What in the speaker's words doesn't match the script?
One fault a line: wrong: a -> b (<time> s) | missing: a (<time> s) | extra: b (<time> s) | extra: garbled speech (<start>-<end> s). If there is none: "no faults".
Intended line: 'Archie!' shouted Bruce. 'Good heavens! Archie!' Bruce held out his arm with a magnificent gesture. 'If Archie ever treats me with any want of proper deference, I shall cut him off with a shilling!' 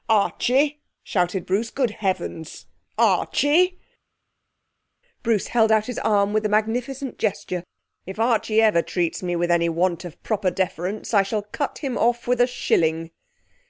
no faults